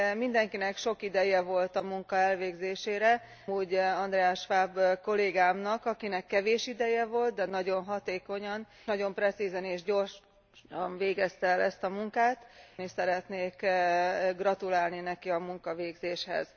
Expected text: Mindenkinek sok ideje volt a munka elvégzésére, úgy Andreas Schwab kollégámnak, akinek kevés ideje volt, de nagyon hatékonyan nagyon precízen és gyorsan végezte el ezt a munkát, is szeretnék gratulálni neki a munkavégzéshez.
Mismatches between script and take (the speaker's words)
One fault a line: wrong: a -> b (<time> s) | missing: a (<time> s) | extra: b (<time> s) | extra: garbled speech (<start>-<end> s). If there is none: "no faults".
no faults